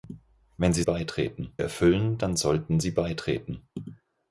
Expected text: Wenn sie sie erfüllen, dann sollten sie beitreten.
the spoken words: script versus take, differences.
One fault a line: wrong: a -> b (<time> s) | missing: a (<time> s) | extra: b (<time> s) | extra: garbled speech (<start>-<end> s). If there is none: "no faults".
wrong: sie -> beitreten (0.8 s)